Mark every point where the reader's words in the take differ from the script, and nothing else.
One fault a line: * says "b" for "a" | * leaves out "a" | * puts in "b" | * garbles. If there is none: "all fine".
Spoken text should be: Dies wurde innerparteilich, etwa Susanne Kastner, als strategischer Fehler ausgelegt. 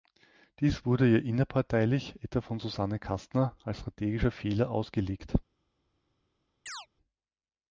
* puts in "ihr"
* puts in "von"